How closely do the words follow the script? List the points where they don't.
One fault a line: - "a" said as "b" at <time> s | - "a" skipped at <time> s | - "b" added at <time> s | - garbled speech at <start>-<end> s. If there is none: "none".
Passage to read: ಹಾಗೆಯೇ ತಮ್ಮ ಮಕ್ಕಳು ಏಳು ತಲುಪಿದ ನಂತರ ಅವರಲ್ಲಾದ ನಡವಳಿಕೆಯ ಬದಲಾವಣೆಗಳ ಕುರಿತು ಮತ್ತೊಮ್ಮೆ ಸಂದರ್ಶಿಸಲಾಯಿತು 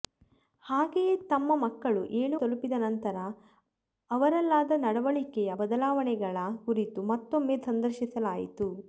none